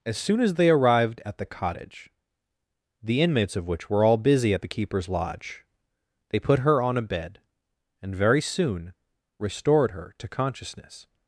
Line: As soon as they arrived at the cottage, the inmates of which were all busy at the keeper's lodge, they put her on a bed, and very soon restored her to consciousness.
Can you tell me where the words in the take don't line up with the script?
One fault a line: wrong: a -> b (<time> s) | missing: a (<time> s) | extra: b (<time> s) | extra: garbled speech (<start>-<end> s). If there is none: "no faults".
no faults